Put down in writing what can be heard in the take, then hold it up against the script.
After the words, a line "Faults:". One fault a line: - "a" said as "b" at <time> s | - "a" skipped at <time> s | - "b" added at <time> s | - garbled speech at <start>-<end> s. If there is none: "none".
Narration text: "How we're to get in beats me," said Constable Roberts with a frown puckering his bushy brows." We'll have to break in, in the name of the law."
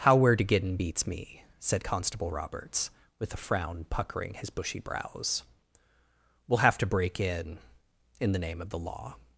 "How we're to get in beats me," said Constable Roberts with a frown puckering his bushy brows." We'll have to break in, in the name of the law."
Faults:
none